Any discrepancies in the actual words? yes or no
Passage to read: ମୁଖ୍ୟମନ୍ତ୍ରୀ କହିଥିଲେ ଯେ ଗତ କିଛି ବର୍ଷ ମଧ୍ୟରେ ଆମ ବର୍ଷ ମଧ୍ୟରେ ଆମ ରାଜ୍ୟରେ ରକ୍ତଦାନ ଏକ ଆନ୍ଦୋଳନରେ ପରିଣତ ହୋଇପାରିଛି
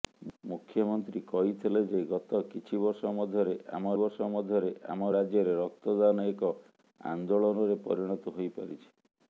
no